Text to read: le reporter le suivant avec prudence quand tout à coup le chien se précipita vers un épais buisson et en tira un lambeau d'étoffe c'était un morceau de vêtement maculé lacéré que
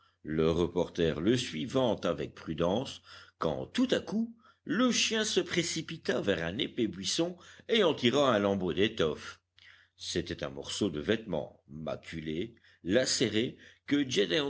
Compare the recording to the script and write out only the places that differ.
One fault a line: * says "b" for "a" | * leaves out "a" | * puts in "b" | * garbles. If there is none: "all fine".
all fine